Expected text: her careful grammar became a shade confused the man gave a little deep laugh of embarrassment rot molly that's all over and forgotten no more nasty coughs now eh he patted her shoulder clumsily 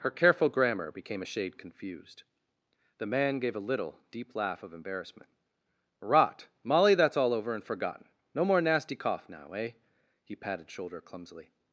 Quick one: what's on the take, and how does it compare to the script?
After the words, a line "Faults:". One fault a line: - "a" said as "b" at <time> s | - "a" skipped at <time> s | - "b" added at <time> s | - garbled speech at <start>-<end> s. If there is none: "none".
her careful grammar became a shade confused the man gave a little deep laugh of embarrassment rot molly that's all over and forgotten no more nasty cough now eh he patted shoulder clumsily
Faults:
- "coughs" said as "cough" at 8.9 s
- "her" skipped at 10.7 s